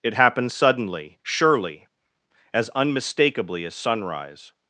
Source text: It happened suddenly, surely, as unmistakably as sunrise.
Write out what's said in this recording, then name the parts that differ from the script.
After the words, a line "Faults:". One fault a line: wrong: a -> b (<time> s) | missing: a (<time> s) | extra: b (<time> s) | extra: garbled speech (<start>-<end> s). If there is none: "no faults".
It happened suddenly, surely, as unmistakably as sunrise.
Faults:
no faults